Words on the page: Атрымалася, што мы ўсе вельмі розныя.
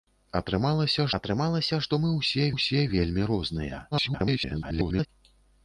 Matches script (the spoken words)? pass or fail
fail